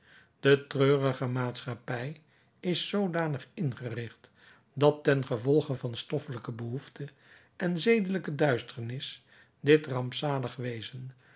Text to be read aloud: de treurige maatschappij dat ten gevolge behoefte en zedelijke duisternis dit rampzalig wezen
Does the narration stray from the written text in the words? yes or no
yes